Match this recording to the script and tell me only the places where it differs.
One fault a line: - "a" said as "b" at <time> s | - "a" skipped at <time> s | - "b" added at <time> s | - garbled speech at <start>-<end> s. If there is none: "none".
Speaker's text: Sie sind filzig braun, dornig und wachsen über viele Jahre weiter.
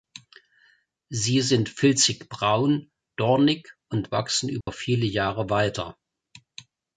none